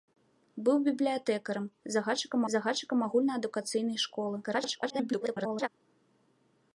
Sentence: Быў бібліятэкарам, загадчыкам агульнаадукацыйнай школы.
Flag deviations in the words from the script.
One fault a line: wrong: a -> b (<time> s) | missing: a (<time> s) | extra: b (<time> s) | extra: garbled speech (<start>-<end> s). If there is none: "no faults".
extra: загадчыкам (2.5 s)
extra: garbled speech (4.4-5.7 s)